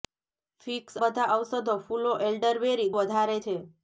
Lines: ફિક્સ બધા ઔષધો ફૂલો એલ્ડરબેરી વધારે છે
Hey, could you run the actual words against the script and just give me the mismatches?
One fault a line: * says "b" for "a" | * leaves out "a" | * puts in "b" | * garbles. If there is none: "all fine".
all fine